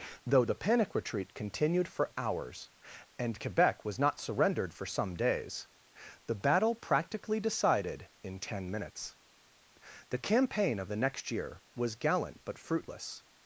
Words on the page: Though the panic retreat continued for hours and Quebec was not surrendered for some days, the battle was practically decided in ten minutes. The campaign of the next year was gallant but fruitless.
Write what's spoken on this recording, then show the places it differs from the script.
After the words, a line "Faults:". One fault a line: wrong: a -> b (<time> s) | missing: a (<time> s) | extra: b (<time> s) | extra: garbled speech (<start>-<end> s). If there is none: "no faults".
Though the panic retreat continued for hours and Quebec was not surrendered for some days, the battle practically decided in ten minutes. The campaign of the next year was gallant but fruitless.
Faults:
missing: was (6.7 s)